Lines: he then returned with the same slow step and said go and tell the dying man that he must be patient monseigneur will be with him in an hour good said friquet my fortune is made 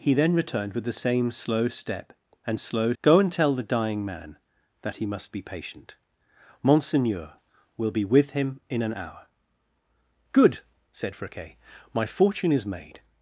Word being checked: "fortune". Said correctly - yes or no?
yes